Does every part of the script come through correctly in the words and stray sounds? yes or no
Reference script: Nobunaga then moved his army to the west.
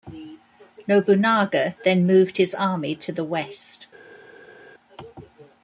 yes